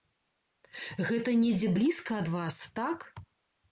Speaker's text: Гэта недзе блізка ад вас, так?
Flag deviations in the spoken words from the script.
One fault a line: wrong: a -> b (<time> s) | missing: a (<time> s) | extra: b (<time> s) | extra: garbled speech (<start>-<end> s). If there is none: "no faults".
no faults